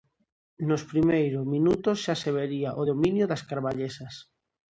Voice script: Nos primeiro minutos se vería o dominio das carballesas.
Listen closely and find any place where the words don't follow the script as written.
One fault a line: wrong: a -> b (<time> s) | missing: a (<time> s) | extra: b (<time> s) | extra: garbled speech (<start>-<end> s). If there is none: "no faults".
extra: xa (2.0 s)